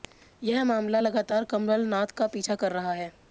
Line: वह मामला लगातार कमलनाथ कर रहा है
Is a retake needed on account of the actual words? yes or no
yes